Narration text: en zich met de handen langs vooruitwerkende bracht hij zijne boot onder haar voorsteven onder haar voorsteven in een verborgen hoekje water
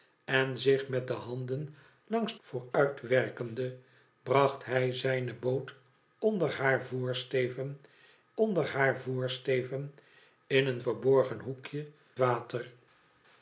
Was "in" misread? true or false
false